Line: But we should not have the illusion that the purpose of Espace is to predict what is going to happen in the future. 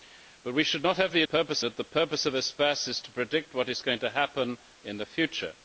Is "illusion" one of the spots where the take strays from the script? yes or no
yes